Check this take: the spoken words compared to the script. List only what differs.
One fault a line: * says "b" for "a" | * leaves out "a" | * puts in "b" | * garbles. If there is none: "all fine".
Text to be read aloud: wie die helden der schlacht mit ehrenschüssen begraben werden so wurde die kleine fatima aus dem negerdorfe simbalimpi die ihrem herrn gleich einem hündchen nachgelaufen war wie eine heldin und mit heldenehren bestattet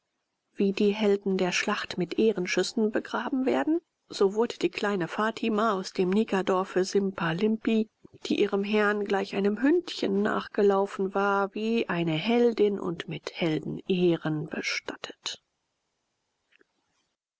all fine